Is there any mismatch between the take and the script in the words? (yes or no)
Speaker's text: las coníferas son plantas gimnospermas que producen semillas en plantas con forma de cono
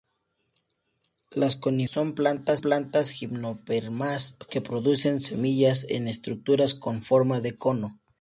yes